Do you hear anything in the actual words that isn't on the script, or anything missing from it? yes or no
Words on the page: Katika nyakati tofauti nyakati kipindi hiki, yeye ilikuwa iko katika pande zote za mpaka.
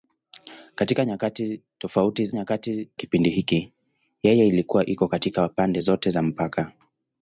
no